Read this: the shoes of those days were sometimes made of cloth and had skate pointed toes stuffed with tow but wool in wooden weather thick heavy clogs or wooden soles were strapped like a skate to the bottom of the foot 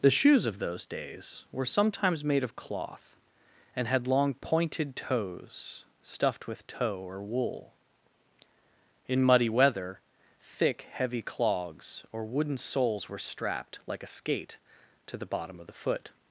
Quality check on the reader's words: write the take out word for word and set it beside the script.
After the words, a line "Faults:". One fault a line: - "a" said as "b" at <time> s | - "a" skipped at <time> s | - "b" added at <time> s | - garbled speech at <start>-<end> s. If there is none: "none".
the shoes of those days were sometimes made of cloth and had long pointed toes stuffed with tow or wool in muddy weather thick heavy clogs or wooden soles were strapped like a skate to the bottom of the foot
Faults:
- "skate" said as "long" at 4.1 s
- "but" said as "or" at 7.0 s
- "wooden" said as "muddy" at 9.2 s